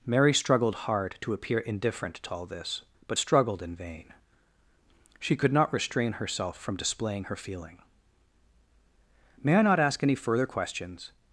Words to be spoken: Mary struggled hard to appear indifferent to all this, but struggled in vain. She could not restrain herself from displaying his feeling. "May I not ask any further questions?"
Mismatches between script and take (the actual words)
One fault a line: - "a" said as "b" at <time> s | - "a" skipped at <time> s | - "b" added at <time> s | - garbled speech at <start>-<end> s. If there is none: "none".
- "his" said as "her" at 7.2 s